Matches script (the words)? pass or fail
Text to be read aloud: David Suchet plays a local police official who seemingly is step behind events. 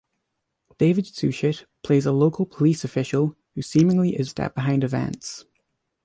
pass